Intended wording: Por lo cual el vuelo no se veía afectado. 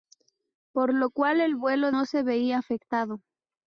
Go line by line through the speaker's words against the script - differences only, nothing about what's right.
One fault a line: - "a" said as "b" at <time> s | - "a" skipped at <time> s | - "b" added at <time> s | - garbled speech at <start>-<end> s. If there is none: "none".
none